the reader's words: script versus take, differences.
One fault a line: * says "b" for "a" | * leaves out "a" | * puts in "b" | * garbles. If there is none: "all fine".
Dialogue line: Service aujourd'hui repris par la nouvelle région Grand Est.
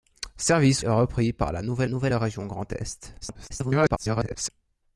* leaves out "aujourd'hui"
* puts in "nouvelle"
* garbles